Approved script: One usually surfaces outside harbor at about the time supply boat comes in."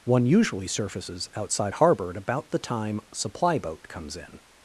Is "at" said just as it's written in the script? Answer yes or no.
yes